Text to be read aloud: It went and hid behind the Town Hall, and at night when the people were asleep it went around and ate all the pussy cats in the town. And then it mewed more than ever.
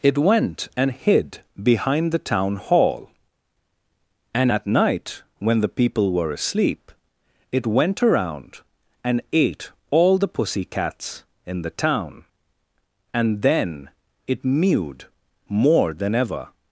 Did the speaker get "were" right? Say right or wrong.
right